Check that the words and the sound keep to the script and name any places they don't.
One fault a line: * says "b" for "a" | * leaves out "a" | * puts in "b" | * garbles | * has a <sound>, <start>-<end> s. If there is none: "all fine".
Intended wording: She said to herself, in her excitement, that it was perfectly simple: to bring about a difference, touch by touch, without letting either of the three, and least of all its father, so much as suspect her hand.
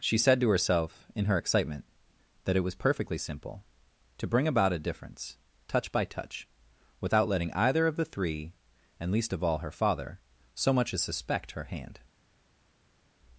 * says "her" for "its"